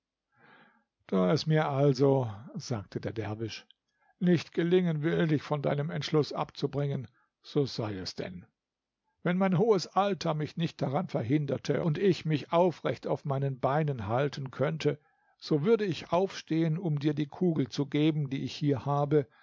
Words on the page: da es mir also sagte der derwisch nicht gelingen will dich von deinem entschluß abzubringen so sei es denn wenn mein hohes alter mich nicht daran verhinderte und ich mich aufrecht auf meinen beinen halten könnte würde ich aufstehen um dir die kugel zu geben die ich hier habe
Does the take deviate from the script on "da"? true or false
false